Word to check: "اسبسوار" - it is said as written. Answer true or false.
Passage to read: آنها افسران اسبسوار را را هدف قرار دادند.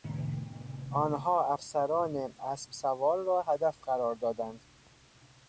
true